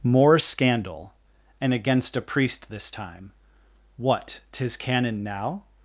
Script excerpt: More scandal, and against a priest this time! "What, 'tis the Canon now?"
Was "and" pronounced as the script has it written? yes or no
yes